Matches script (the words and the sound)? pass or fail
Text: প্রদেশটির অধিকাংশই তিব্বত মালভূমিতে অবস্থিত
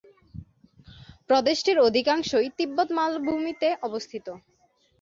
pass